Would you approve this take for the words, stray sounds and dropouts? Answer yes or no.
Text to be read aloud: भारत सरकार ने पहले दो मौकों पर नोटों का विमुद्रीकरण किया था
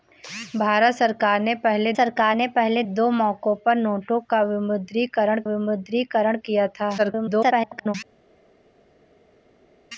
no